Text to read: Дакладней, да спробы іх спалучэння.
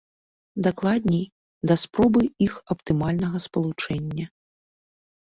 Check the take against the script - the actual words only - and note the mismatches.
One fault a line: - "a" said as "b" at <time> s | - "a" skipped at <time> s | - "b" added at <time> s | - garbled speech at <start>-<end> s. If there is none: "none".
- "аптымальнага" added at 2.8 s